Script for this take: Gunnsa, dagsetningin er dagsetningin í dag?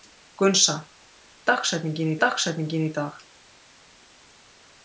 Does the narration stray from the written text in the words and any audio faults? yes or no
no